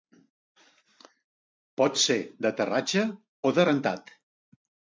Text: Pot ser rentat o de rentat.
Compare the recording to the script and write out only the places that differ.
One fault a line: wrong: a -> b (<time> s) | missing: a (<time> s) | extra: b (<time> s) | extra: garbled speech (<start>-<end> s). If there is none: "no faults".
wrong: rentat -> d'aterratge (2.5 s)